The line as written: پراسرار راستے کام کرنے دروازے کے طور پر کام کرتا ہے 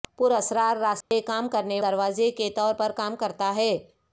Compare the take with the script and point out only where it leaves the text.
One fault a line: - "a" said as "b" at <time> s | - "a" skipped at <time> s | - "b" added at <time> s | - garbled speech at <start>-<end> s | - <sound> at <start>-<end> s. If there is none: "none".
- dropout at 1.0-1.1 s